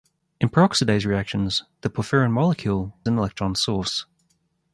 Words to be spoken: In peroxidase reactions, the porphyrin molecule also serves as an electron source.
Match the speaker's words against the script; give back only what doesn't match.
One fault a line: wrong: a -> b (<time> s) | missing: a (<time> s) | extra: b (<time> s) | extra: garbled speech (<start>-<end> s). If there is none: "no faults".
missing: also serves as (2.9 s)